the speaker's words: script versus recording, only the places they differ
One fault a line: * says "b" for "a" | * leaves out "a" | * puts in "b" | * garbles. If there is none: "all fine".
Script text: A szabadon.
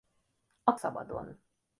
all fine